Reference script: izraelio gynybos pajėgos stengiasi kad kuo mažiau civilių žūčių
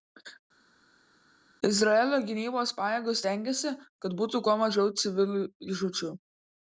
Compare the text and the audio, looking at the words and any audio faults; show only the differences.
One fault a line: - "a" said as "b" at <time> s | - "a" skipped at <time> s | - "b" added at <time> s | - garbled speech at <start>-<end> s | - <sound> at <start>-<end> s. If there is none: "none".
- "būtų" added at 4.2 s